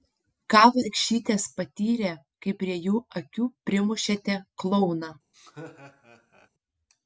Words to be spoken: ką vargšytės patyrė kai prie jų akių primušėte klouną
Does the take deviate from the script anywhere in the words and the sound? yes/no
yes